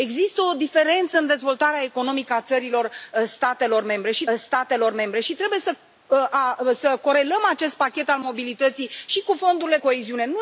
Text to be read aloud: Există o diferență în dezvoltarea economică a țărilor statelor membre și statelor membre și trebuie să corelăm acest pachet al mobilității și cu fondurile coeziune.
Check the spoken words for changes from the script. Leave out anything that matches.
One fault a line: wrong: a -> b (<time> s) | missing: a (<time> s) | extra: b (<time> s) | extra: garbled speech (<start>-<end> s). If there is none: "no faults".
no faults